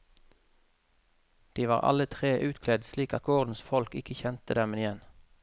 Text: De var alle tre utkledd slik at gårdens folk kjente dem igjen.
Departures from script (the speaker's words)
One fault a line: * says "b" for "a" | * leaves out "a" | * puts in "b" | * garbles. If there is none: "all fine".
* puts in "ikke"